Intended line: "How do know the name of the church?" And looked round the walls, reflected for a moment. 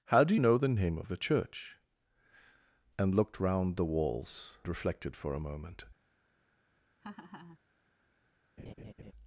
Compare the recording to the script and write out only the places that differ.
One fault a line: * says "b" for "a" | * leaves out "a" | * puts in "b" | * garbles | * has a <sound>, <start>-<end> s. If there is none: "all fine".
* has a laugh, 7.0-7.6 s
* has a laugh, 8.6-9.1 s